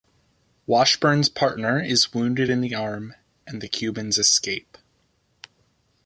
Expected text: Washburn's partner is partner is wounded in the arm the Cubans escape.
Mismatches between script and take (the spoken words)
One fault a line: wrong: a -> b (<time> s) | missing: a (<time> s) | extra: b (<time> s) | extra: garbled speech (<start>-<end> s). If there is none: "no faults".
missing: partner is (2.1 s)
extra: and (3.4 s)